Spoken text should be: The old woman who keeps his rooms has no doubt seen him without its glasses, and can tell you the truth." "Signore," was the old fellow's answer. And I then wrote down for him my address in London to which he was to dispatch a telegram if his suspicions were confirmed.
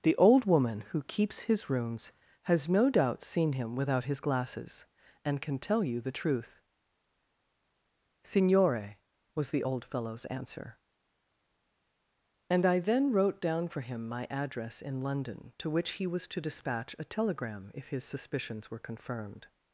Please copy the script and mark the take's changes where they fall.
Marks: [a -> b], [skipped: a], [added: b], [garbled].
The old woman who keeps his rooms has no doubt seen him without [its -> his] glasses, and can tell you the truth." "Signore," was the old fellow's answer. And I then wrote down for him my address in London to which he was to dispatch a telegram if his suspicions were confirmed.